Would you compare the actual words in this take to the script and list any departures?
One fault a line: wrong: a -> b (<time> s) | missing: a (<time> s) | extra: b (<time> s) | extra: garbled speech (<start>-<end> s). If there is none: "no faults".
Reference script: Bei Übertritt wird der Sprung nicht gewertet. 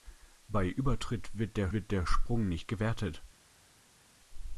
extra: wird der (1.7 s)